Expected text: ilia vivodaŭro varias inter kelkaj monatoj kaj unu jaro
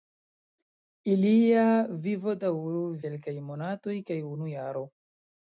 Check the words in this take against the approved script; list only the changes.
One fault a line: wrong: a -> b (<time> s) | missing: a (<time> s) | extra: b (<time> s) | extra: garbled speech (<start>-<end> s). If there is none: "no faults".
missing: varias inter (2.8 s)